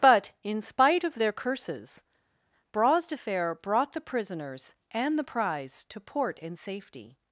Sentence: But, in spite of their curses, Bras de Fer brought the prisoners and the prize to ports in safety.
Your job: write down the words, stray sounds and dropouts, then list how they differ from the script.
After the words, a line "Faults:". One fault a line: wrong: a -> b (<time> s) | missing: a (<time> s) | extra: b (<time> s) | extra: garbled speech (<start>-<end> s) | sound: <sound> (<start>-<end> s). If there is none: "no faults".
But, in spite of their curses, Bras de Fer brought the prisoners and the prize to port in safety.
Faults:
wrong: ports -> port (6.0 s)